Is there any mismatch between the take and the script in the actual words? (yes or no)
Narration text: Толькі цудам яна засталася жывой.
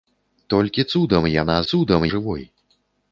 yes